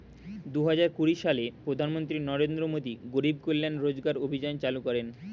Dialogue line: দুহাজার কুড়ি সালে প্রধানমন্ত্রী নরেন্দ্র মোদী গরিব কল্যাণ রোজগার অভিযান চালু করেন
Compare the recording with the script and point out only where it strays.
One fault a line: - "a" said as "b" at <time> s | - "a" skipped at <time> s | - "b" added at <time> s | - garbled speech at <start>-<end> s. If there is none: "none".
none